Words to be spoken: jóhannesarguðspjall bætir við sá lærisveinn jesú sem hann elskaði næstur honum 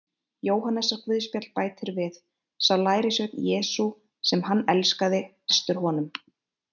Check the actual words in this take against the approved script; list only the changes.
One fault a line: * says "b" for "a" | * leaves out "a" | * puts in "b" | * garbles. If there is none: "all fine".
all fine